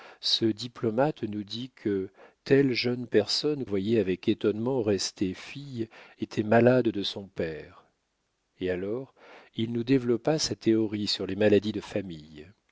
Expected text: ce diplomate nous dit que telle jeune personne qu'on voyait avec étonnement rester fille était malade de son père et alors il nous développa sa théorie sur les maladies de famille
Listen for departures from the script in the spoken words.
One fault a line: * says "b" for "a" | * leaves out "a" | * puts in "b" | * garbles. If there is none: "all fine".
* leaves out "qu'on"